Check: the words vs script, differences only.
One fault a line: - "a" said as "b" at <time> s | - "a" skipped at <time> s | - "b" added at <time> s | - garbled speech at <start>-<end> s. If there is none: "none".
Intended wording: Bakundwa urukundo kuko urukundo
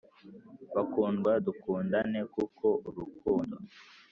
- "urukundo" said as "dukundane" at 1.4 s